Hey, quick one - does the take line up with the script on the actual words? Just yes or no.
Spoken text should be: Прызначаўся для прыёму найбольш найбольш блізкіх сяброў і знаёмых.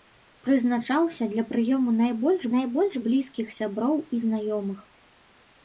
yes